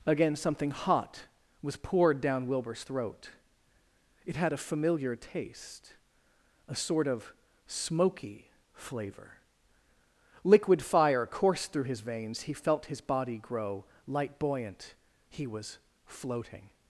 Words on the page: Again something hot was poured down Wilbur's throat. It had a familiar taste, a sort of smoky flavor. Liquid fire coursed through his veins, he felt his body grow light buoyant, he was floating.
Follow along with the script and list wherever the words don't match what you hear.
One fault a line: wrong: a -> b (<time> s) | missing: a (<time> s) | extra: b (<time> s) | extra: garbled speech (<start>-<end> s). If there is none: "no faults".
no faults